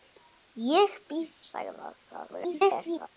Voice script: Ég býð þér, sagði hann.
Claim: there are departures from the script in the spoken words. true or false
true